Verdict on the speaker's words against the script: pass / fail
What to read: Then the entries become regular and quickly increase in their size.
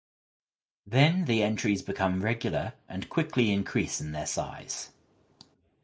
pass